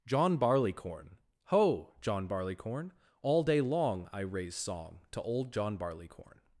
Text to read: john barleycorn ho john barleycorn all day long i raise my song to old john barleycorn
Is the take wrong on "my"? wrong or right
wrong